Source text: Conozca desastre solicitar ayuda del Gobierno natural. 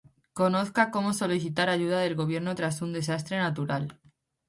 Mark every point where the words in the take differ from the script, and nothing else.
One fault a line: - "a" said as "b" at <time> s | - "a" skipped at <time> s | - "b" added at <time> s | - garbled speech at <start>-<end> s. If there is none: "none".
- "desastre" said as "cómo" at 0.9 s
- "tras un desastre" added at 2.5 s